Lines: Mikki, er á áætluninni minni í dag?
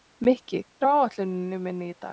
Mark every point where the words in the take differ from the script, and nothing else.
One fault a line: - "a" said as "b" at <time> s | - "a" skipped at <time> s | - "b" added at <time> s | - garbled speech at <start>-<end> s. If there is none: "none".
none